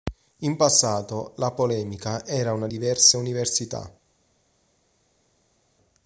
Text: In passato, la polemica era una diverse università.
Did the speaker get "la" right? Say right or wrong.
right